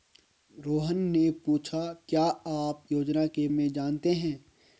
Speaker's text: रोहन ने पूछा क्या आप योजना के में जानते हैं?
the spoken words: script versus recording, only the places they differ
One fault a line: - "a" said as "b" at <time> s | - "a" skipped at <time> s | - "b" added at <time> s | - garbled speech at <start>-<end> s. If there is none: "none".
none